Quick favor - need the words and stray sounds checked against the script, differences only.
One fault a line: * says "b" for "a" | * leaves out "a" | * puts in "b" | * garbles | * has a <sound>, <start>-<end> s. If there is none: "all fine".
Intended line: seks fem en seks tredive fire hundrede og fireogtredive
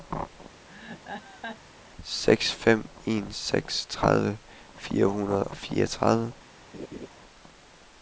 * has a laugh, 0.7-1.6 s
* has a laugh, 6.7-7.1 s